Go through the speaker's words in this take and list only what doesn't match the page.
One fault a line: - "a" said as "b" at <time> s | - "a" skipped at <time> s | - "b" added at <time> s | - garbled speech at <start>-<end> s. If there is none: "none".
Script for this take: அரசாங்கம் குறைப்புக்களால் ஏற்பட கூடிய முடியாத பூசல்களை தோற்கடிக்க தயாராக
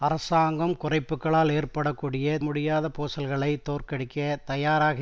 none